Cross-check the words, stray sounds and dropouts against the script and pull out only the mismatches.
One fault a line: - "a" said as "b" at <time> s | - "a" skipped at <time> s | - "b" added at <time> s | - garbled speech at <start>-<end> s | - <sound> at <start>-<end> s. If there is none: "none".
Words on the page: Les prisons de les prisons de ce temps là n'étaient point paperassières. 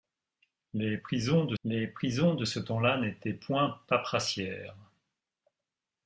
none